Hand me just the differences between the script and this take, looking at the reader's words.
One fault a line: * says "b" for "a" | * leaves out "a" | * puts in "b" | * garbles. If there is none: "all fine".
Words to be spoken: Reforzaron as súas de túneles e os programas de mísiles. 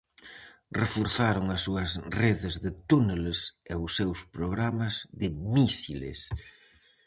* puts in "redes"
* puts in "seus"